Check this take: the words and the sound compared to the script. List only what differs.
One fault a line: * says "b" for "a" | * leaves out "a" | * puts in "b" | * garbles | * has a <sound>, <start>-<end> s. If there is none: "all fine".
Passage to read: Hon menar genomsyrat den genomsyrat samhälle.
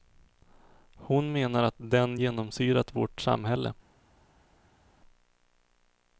* says "att" for "genomsyrat"
* puts in "vårt"